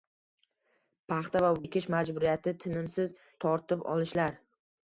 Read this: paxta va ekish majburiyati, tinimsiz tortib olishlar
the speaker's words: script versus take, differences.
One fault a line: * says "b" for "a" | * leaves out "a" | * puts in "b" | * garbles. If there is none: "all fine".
all fine